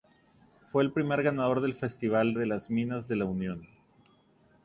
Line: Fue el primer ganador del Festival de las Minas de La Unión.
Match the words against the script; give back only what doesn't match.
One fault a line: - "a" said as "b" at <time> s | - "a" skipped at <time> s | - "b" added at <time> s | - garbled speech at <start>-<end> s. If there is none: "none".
none